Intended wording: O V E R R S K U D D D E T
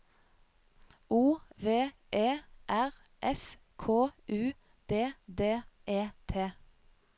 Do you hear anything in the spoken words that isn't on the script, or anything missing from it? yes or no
yes